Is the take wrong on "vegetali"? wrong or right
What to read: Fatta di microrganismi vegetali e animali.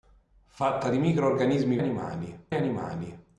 wrong